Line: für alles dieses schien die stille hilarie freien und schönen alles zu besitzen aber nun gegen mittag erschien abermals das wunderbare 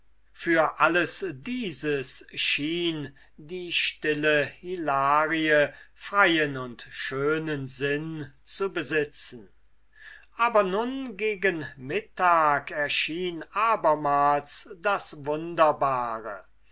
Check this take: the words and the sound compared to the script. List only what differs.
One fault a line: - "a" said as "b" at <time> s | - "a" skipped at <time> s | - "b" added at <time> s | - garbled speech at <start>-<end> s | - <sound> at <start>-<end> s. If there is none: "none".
- "alles" said as "sinn" at 7.7 s